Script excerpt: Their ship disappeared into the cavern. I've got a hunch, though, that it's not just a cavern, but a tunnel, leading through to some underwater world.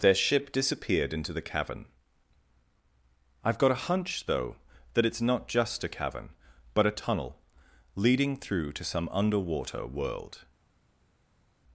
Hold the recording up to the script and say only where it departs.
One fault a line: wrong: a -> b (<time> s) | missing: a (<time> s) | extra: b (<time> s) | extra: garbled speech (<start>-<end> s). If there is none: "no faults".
no faults